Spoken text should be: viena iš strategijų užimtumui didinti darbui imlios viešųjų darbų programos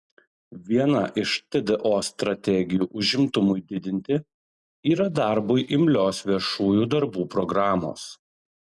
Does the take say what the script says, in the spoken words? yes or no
no